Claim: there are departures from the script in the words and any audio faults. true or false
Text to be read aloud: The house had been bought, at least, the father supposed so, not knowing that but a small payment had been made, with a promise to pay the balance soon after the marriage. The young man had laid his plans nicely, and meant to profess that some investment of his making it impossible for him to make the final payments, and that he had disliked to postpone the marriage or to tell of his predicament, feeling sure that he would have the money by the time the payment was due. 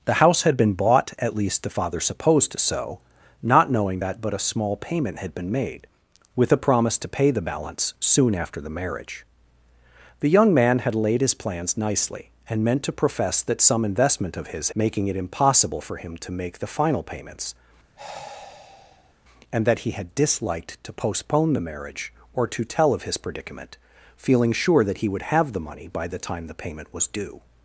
true